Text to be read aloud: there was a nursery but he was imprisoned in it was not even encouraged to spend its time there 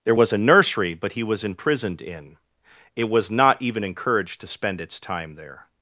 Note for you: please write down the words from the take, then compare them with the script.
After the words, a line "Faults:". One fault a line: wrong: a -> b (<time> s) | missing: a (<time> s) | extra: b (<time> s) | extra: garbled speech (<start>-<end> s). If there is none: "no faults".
there was a nursery but he was imprisoned in it was not even encouraged to spend its time there
Faults:
no faults